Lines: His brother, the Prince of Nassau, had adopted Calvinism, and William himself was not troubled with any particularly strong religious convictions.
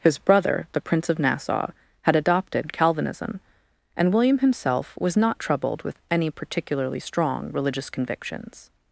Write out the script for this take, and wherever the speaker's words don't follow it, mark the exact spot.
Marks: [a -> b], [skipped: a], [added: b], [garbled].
His brother, the Prince of Nassau, had adopted Calvinism, and William himself was not troubled with any particularly strong religious convictions.